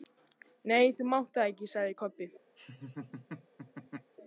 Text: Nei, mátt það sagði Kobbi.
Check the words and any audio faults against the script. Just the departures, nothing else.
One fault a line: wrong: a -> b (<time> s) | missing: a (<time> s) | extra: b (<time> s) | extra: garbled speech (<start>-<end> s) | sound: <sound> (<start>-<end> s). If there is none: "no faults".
extra: þú (1.0 s)
extra: ekki (1.5 s)
sound: laugh (2.6-4.1 s)